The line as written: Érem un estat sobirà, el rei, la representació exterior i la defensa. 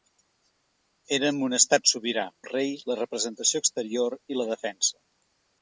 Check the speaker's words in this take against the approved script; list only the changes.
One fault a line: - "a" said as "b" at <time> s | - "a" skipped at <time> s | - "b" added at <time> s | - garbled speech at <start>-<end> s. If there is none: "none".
none